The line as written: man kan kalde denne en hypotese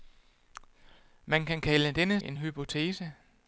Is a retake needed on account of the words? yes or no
no